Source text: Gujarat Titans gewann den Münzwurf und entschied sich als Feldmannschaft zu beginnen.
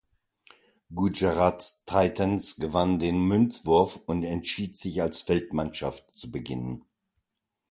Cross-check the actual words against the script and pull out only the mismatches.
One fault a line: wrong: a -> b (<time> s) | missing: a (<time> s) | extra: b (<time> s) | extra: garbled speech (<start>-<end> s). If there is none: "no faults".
no faults